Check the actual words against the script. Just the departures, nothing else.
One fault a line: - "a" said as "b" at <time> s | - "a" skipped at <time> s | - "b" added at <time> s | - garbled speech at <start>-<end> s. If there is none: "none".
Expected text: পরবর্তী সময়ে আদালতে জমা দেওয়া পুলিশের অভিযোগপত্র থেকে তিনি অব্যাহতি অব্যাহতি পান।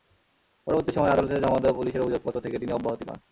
- "অব্যাহতি" skipped at 3.0 s